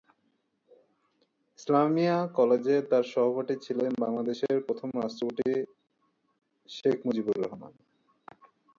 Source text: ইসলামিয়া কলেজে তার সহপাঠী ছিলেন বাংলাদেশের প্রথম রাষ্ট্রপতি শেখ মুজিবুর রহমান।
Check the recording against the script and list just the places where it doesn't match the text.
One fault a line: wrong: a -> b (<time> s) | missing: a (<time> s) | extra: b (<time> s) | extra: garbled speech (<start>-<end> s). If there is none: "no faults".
no faults